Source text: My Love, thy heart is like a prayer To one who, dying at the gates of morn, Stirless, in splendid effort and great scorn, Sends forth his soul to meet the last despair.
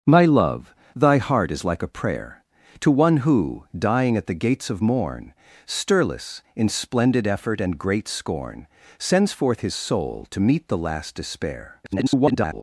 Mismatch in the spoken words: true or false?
true